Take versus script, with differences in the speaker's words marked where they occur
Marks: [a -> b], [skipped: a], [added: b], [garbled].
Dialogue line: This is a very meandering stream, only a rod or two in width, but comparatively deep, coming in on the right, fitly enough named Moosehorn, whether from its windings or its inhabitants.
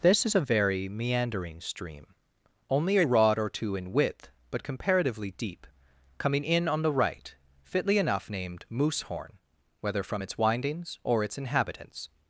This is a very meandering stream, only a rod or two in width, but comparatively deep, coming in on the right, fitly enough named Moosehorn, whether from its windings or its inhabitants.